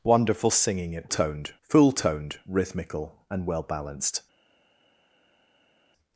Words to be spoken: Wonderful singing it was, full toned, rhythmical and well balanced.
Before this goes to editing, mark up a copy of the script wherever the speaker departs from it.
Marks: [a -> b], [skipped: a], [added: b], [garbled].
Wonderful singing it [was, -> toned] full toned, rhythmical and well balanced.